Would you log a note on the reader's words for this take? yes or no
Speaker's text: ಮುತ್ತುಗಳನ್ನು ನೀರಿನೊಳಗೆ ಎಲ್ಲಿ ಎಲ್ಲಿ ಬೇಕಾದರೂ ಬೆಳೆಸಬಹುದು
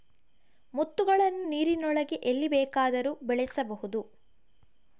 yes